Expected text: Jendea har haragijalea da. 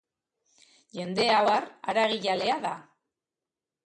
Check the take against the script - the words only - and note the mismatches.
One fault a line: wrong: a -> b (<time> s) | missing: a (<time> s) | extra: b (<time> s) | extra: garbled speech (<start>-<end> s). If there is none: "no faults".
no faults